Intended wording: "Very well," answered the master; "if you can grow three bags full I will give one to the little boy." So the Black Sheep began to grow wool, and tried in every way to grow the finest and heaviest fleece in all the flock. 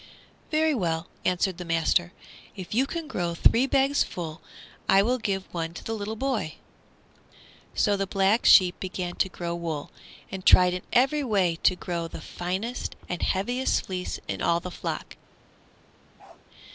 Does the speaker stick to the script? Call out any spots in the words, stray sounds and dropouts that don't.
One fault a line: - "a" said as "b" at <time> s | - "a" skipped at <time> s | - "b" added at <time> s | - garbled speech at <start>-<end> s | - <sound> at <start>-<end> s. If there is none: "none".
- bark at 16.2-16.4 s